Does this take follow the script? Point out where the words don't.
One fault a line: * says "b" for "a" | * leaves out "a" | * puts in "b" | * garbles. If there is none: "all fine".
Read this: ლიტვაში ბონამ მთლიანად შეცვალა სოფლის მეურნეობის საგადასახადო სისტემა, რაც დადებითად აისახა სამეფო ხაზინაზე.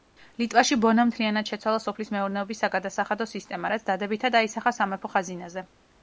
all fine